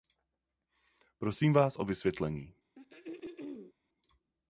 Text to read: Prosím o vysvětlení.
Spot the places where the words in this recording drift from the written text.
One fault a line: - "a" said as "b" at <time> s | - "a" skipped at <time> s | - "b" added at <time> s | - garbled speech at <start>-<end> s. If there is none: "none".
- "vás" added at 1.5 s